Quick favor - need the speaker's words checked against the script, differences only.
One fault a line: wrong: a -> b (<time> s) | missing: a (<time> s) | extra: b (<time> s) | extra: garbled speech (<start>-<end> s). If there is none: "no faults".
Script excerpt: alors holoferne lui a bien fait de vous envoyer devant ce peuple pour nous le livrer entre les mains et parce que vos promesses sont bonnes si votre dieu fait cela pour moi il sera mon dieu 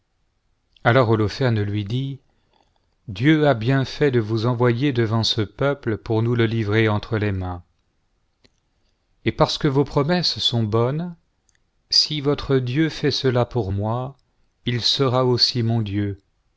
extra: dit dieu (1.9 s)
extra: aussi (15.3 s)